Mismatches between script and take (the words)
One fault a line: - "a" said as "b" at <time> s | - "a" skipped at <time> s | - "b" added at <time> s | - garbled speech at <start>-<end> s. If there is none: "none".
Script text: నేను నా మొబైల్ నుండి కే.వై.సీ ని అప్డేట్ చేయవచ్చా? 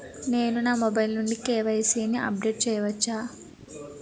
none